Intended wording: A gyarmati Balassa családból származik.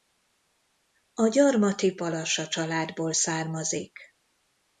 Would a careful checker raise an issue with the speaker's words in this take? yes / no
no